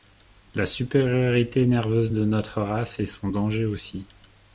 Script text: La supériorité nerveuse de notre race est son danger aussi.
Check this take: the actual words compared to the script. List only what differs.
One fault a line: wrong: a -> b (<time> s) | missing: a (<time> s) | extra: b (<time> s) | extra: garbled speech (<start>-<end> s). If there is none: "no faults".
no faults